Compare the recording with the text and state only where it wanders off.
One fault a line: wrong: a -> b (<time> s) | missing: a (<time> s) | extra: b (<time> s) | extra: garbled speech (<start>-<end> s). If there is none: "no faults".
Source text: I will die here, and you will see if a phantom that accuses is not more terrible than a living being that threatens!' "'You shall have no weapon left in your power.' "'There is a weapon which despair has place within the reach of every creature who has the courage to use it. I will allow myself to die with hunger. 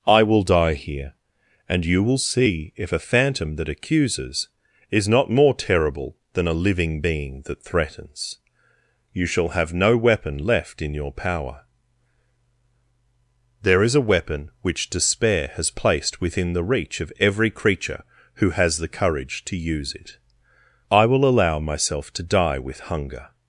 wrong: place -> placed (15.7 s)